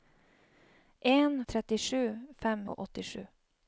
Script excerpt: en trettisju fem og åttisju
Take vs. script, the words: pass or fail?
pass